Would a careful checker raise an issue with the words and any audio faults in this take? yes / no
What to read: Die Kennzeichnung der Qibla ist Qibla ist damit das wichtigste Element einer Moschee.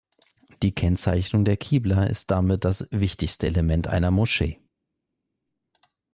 yes